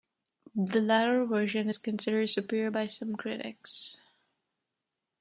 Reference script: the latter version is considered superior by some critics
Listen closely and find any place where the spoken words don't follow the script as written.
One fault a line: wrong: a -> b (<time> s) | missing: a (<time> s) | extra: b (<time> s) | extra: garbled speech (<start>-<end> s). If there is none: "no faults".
no faults